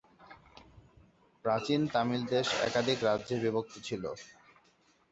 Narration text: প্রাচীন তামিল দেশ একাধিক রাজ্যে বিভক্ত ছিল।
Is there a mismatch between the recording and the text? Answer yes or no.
no